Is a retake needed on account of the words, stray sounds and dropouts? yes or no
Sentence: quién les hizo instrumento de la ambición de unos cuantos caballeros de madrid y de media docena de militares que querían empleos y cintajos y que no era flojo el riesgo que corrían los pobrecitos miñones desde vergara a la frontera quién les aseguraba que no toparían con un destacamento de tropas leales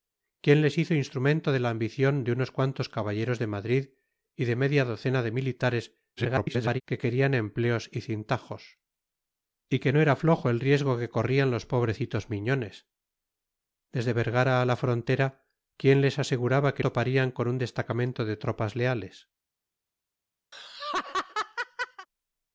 yes